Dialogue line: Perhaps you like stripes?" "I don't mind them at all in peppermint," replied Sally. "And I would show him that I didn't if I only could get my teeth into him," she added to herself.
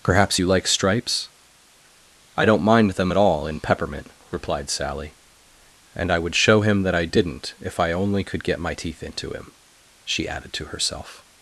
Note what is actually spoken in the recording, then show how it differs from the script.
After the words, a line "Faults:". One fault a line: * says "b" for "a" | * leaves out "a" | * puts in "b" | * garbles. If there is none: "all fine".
Perhaps you like stripes?" "I don't mind them at all in peppermint," replied Sally. "And I would show him that I didn't if I only could get my teeth into him," she added to herself.
Faults:
all fine